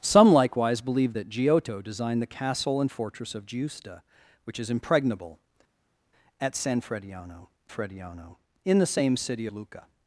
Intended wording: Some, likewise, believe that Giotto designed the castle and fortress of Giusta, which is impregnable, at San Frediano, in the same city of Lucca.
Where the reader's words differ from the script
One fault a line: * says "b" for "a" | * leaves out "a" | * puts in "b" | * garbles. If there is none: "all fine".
* puts in "Frediano"
* leaves out "of"